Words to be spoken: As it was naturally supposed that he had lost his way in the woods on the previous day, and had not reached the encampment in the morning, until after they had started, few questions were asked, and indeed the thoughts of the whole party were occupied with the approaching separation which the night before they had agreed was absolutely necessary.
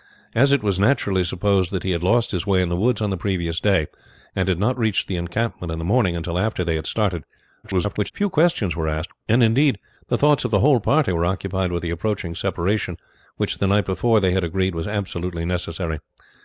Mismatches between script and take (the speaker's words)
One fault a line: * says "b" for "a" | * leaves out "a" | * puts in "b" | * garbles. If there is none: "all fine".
* garbles